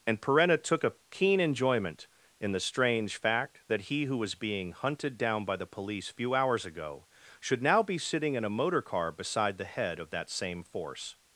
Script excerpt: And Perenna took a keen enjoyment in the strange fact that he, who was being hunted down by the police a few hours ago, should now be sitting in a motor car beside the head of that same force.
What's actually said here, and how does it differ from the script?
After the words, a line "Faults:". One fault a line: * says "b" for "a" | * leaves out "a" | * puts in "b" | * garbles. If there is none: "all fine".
And Perenna took a keen enjoyment in the strange fact that he, who was being hunted down by the police few hours ago, should now be sitting in a motor car beside the head of that same force.
Faults:
* leaves out "a"